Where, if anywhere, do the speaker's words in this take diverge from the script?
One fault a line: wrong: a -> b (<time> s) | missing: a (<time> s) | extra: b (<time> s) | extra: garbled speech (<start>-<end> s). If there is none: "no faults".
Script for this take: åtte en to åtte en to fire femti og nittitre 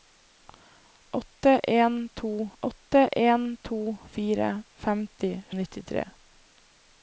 no faults